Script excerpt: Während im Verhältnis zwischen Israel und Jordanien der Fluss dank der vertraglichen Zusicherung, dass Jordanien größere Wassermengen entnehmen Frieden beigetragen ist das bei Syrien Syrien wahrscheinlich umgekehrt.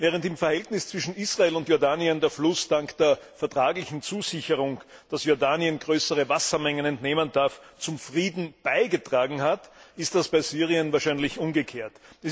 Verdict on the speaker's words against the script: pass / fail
fail